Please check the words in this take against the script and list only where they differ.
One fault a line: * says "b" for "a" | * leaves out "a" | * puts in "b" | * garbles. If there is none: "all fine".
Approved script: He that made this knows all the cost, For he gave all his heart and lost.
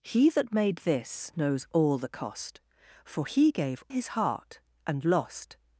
* leaves out "all"